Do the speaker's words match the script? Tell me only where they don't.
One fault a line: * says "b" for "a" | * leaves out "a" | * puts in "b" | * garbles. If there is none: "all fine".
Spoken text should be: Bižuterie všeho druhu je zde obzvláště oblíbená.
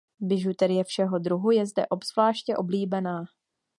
all fine